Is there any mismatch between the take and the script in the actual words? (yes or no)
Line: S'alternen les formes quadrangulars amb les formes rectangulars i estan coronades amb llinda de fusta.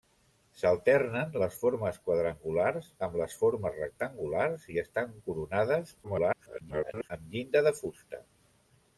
yes